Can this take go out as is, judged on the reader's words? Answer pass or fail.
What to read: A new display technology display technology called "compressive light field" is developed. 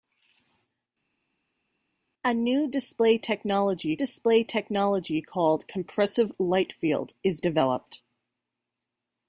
pass